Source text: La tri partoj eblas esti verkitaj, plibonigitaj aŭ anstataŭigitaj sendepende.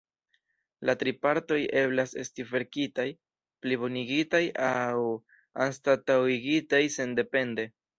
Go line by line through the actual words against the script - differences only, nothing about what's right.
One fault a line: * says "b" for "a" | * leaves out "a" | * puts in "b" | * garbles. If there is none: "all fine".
all fine